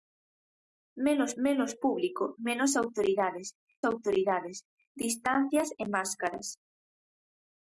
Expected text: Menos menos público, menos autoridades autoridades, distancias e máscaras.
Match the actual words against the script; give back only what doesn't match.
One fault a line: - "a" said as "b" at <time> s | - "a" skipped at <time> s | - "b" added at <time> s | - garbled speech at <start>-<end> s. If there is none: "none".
none